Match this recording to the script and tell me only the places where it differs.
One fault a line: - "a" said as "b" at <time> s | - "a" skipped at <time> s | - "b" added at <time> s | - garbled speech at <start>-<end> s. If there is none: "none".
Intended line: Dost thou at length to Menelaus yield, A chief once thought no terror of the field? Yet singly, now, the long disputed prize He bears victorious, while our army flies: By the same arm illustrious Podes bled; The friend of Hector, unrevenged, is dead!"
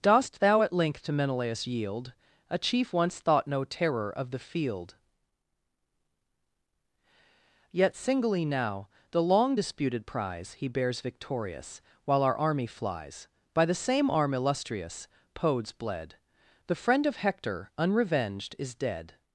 none